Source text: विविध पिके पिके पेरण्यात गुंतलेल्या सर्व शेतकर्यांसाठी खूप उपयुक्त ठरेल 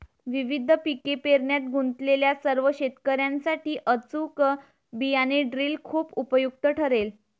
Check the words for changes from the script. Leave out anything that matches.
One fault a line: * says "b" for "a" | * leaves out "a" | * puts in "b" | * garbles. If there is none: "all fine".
* leaves out "पिके"
* puts in "अचूक बियाणे ड्रिल"